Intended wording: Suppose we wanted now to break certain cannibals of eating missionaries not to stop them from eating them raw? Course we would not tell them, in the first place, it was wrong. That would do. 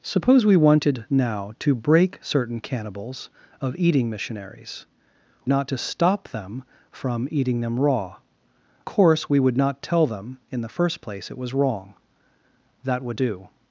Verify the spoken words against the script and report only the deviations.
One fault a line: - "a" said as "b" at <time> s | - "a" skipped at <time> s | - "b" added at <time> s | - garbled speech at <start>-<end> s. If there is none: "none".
none